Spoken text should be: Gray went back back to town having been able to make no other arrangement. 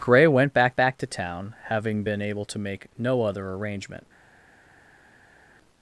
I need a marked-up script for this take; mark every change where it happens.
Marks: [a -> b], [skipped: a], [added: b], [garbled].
Gray went back back to town having been able to make no other arrangement.